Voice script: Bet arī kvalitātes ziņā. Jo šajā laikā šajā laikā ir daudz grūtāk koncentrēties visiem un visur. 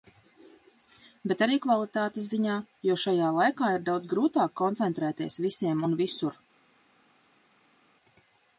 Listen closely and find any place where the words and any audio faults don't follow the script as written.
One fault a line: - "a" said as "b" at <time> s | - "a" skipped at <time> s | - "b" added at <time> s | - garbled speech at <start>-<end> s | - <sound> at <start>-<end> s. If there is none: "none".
- "šajā laikā" skipped at 3.7 s